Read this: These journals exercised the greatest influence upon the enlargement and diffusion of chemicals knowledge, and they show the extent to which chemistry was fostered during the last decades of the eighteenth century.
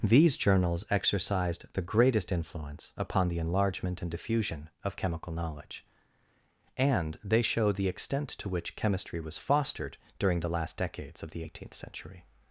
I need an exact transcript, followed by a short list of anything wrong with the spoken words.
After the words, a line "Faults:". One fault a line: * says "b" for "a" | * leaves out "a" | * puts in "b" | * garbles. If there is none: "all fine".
These journals exercised the greatest influence upon the enlargement and diffusion of chemical knowledge, and they show the extent to which chemistry was fostered during the last decades of the eighteenth century.
Faults:
* says "chemical" for "chemicals"